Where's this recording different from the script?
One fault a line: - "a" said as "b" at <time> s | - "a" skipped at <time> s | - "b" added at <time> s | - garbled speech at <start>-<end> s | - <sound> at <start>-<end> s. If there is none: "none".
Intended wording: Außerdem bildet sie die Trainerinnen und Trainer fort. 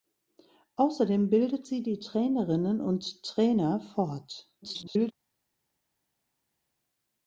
- garbled speech at 4.6-5.1 s